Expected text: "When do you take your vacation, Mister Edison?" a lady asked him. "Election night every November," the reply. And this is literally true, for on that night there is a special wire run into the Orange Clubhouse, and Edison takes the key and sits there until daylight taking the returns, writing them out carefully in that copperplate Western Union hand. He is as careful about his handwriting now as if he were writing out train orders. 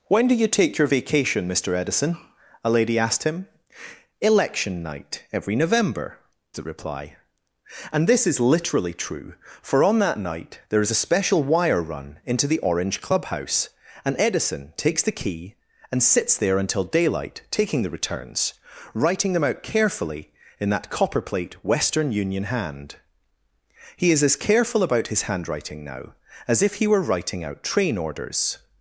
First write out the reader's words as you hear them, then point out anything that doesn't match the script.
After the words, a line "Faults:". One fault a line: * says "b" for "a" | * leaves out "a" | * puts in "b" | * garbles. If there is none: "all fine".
"When do you take your vacation, Mister Edison?" a lady asked him. "Election night every November," the reply. And this is literally true, for on that night there is a special wire run into the Orange Clubhouse, and Edison takes the key and sits there until daylight taking the returns, writing them out carefully in that copperplate Western Union hand. He is as careful about his handwriting now as if he were writing out train orders.
Faults:
all fine